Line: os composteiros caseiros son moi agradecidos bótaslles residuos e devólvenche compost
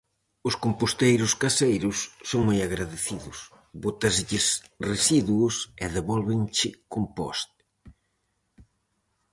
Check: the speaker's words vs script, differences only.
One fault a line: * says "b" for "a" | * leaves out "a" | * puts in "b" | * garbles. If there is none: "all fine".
all fine